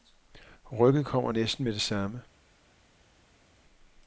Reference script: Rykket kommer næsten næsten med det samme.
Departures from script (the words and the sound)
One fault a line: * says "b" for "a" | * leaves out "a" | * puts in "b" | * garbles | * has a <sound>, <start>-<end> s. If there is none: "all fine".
* leaves out "næsten"